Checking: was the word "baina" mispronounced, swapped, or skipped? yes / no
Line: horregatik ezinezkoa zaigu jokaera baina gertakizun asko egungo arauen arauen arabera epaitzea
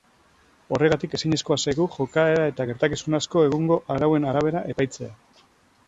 yes